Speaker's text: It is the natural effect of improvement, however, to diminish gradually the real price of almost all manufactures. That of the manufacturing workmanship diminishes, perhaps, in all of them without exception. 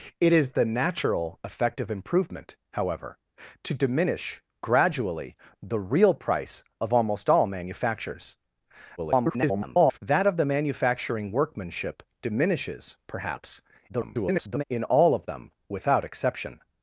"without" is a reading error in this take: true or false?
false